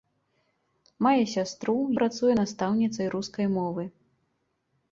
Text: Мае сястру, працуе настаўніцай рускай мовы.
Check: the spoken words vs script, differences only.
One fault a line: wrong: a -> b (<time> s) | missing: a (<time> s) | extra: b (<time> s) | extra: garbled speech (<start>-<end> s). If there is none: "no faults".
no faults